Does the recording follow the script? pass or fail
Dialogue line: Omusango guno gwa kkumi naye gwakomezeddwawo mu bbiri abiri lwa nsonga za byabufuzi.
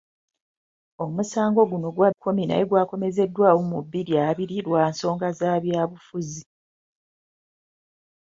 pass